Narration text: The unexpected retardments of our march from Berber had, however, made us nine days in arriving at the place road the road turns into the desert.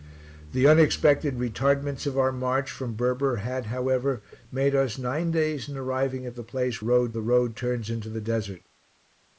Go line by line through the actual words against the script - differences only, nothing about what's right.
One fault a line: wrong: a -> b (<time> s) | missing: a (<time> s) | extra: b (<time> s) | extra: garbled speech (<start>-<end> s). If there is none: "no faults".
no faults